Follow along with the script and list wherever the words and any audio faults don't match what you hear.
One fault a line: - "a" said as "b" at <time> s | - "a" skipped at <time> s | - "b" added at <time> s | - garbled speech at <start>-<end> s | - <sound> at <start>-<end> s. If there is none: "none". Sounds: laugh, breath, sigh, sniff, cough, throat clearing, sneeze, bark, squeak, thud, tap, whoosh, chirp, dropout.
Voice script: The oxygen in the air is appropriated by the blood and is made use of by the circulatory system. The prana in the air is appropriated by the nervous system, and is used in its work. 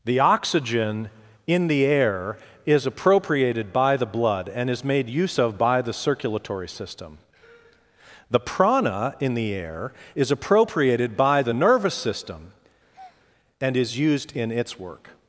- breath at 12.9-13.3 s